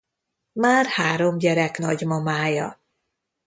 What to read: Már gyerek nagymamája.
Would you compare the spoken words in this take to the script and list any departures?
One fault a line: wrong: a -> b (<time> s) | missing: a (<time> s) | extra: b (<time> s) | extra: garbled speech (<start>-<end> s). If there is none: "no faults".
extra: három (0.8 s)